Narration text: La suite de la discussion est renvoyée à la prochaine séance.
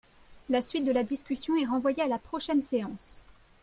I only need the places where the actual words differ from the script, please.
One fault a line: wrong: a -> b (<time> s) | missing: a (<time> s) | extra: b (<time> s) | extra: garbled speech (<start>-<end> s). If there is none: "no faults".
no faults